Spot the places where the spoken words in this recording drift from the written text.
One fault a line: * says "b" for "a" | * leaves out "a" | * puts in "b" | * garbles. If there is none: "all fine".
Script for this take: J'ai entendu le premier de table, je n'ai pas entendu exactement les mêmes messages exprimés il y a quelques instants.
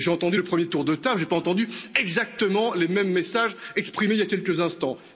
* puts in "tour"